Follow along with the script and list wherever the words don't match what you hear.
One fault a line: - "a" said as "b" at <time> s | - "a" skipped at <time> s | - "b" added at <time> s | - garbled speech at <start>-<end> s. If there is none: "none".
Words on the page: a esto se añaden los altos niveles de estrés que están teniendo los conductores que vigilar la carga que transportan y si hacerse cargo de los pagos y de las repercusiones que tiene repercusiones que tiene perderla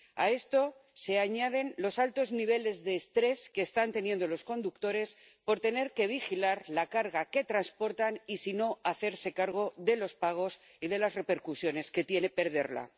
- "por tener" added at 5.4 s
- "no" added at 8.5 s
- "repercusiones que tiene" skipped at 12.3 s